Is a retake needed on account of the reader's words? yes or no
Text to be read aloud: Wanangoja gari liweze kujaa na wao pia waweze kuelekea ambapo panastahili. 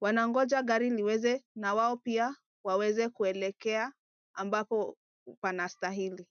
yes